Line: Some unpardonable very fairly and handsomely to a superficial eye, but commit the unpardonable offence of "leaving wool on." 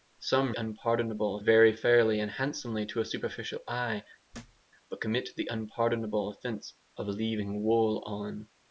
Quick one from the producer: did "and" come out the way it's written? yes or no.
yes